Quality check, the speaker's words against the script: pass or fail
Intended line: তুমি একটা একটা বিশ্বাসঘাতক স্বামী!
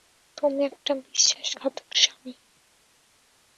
fail